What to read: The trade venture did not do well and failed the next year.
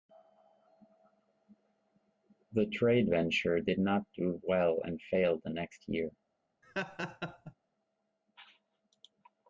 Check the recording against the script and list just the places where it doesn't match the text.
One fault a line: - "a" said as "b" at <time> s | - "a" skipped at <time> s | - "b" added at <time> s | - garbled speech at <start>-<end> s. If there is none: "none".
none